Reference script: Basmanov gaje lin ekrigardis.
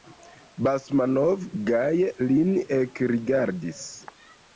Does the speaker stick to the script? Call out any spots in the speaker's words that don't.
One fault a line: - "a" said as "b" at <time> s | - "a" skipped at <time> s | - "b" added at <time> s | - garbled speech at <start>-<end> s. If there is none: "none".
none